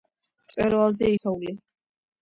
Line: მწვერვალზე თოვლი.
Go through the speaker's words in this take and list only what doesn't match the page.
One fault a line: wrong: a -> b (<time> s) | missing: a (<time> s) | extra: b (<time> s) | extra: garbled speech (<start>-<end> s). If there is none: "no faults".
no faults